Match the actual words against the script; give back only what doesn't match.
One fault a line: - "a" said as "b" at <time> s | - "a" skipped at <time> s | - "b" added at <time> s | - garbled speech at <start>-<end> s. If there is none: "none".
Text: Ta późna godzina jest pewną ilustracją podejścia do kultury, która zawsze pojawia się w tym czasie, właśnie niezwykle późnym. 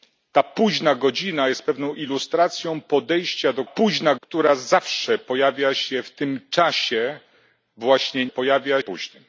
- "kultury" said as "późna" at 3.6 s
- "niezwykle" said as "pojawia" at 8.3 s